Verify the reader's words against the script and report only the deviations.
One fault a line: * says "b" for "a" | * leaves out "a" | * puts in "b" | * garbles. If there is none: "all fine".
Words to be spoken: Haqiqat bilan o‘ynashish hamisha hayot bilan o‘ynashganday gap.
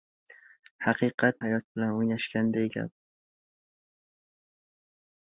* leaves out "bilan o‘ynashish hamisha"